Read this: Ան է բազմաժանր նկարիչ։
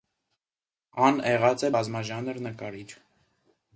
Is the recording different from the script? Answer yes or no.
yes